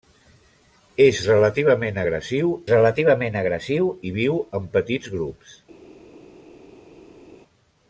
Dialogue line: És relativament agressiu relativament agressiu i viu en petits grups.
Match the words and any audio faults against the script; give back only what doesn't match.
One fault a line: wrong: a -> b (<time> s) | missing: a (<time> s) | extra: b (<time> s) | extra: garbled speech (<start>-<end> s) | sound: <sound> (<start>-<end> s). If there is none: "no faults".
no faults